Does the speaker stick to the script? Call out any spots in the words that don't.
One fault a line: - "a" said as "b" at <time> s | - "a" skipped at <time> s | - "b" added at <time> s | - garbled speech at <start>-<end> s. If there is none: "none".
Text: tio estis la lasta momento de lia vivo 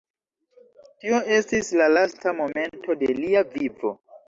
none